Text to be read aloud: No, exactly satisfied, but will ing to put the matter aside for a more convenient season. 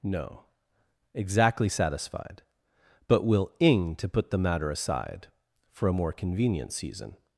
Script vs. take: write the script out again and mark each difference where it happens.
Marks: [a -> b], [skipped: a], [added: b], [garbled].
No, exactly satisfied, but will ing to put the matter aside for a more convenient season.